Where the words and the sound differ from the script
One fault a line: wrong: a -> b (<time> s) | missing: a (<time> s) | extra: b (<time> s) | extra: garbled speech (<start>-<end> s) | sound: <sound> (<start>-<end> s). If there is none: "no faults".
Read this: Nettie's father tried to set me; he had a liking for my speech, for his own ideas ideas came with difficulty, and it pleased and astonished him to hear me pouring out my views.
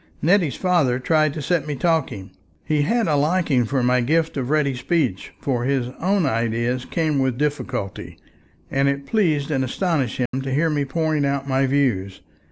extra: talking (1.8 s)
extra: gift of ready (4.0 s)
missing: ideas (6.8 s)
sound: dropout (10.3-10.3 s)